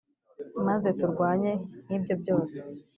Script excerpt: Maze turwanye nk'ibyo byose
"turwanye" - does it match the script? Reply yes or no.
yes